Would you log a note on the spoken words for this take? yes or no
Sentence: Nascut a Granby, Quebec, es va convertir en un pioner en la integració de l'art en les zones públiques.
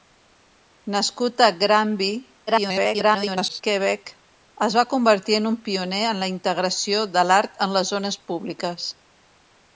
yes